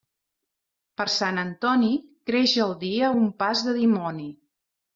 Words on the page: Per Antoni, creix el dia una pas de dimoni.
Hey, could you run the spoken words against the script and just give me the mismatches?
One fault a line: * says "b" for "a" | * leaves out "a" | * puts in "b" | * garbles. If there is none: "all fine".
* puts in "Sant"
* says "un" for "una"